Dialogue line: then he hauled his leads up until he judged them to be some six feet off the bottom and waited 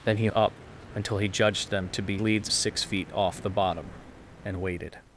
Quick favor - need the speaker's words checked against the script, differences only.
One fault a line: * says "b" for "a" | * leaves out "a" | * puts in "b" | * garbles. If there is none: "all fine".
* leaves out "hauled his leads"
* says "leads" for "some"